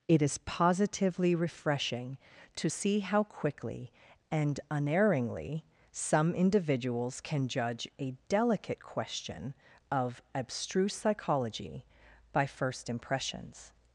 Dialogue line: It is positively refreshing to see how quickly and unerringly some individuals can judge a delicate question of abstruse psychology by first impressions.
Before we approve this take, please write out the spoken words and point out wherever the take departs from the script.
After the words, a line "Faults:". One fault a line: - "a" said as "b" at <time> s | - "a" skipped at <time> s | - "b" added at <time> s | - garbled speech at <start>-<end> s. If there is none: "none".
It is positively refreshing to see how quickly and unerringly some individuals can judge a delicate question of abstruse psychology by first impressions.
Faults:
none